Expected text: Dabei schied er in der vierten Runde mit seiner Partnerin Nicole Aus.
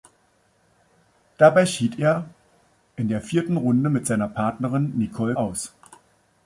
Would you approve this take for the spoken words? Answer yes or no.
yes